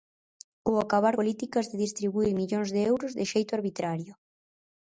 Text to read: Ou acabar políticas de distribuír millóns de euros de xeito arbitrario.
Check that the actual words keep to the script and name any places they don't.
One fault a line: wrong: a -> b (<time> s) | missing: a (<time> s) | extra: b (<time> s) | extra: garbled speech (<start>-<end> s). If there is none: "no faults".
no faults